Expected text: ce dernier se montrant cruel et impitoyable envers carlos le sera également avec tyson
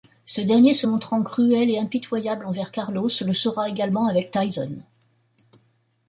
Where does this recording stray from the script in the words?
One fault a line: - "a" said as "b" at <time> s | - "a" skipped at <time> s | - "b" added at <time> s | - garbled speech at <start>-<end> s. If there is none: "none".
none